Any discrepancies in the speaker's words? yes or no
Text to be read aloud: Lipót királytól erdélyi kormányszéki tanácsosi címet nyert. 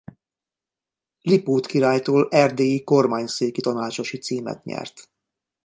no